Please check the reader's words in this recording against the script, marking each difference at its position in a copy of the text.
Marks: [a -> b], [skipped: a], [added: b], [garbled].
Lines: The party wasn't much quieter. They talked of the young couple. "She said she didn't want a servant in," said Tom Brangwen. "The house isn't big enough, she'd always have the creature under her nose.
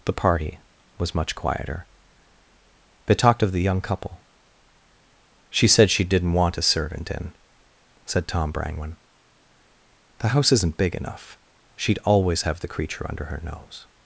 The party [wasn't -> was] much quieter. They talked of the young couple. "She said she didn't want a servant in," said Tom Brangwen. "The house isn't big enough, she'd always have the creature under her nose.